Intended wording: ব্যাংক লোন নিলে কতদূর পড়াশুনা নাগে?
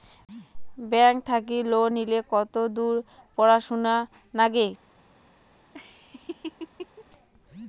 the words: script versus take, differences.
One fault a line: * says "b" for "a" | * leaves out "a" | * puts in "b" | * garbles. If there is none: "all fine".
* puts in "থাকি"